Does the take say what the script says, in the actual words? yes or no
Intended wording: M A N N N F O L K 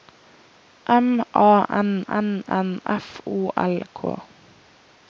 yes